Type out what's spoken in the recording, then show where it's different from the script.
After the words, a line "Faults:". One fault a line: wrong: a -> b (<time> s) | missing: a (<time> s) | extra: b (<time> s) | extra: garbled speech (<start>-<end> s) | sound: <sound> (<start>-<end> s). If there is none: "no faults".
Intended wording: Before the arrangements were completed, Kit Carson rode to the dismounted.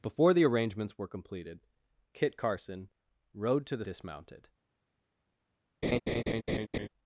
Before the arrangements were completed, Kit Carson rode to the dismounted.
Faults:
sound: laugh (5.8-6.9 s)